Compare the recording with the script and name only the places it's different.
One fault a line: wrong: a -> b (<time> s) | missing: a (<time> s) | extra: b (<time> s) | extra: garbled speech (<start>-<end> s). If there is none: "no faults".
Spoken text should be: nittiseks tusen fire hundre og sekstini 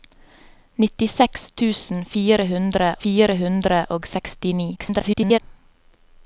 extra: fire hundre (3.0 s)
extra: garbled speech (4.8-5.4 s)